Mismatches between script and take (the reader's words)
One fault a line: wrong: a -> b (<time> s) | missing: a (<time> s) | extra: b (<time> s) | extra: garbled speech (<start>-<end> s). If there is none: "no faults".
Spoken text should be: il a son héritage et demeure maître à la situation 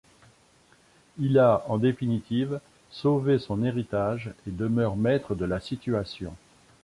extra: en définitive sauvé (1.7 s)
wrong: à -> de (5.3 s)